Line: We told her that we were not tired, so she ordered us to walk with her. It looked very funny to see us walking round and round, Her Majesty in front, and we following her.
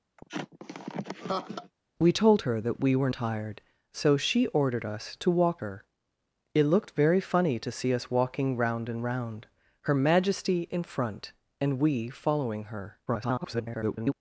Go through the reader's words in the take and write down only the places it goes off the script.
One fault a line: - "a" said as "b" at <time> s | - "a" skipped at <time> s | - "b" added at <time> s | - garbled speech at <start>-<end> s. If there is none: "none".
- "not" skipped at 3.1 s
- "with" skipped at 5.6 s
- garbled speech at 13.1-14.1 s